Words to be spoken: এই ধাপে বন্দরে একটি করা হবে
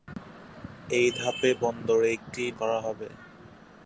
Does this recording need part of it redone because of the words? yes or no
no